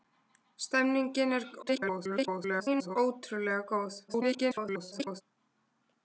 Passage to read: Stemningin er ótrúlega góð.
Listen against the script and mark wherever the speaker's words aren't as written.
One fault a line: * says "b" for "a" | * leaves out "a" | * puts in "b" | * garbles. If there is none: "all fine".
* garbles
* garbles